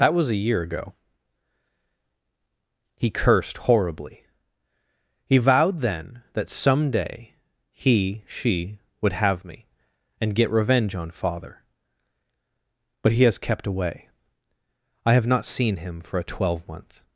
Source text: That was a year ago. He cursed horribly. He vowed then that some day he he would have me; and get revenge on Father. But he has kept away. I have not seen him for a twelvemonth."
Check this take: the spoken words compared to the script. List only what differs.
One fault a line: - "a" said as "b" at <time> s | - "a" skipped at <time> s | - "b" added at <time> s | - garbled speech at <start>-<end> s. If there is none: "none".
- "he" said as "she" at 8.2 s